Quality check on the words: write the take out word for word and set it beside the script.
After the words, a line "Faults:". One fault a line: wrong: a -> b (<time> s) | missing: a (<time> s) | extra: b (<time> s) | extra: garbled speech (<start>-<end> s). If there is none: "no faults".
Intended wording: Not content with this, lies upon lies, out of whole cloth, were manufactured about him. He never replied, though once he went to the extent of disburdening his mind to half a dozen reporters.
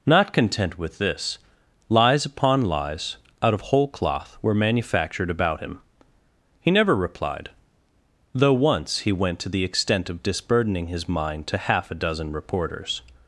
Not content with this, lies upon lies, out of whole cloth, were manufactured about him. He never replied, though once he went to the extent of disburdening his mind to half a dozen reporters.
Faults:
no faults